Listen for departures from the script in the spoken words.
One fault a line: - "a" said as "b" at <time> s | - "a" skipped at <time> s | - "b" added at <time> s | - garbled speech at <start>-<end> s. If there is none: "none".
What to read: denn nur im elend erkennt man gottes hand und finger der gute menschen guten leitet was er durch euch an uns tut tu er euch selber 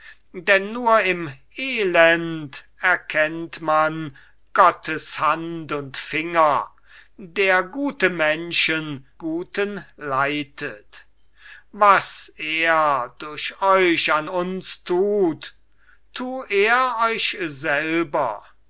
none